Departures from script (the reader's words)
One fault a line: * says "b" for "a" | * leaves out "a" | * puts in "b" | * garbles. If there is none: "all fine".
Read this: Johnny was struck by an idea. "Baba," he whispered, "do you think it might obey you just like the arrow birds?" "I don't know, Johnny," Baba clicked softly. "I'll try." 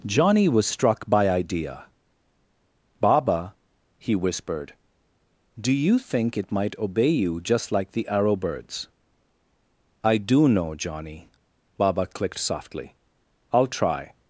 * leaves out "an"
* says "do" for "don't"